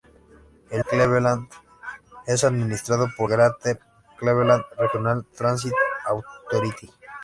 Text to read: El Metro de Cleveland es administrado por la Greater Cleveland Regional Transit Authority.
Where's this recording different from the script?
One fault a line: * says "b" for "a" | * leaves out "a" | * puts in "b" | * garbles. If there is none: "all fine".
* leaves out "Metro de"
* leaves out "la"